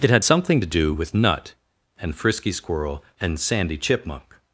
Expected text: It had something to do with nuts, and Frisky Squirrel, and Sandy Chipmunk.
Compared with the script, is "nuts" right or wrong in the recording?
wrong